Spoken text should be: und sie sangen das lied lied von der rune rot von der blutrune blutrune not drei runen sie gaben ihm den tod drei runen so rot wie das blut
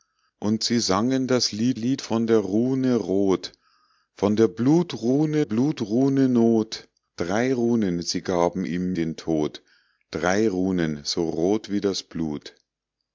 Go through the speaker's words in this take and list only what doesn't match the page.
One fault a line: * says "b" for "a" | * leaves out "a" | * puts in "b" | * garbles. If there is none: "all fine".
all fine